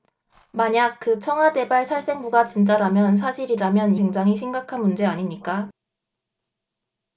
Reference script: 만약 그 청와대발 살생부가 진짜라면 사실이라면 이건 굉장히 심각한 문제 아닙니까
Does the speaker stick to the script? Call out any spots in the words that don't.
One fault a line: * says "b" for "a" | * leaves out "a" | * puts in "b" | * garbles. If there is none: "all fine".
* leaves out "이건"